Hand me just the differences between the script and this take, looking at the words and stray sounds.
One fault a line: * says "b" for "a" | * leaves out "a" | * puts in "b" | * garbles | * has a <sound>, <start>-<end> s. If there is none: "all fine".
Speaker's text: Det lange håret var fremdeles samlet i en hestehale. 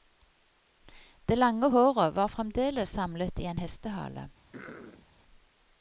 * has a throat clearing, 4.5-5.1 s